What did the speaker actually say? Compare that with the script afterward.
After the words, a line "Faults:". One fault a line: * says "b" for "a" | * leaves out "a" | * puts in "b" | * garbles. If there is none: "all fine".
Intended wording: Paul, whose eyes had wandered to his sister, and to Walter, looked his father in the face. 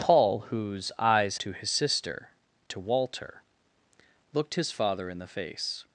Paul, whose eyes to his sister, to Walter, looked his father in the face.
Faults:
* leaves out "had wandered"
* leaves out "and"